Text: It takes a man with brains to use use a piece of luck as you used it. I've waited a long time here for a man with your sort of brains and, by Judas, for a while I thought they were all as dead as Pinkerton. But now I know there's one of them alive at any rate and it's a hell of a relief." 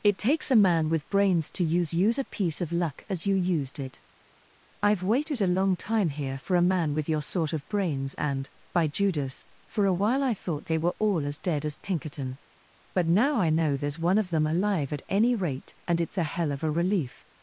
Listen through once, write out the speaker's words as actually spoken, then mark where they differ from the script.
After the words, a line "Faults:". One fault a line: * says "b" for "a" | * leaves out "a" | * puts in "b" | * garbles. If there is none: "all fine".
It takes a man with brains to use use a piece of luck as you used it. I've waited a long time here for a man with your sort of brains and, by Judas, for a while I thought they were all as dead as Pinkerton. But now I know there's one of them alive at any rate and it's a hell of a relief."
Faults:
all fine